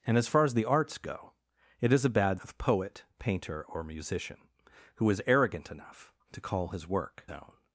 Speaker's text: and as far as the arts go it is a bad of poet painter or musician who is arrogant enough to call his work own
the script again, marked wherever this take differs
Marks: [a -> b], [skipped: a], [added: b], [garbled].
and as far as the arts go it is a bad of poet painter or musician who is arrogant enough to call his work own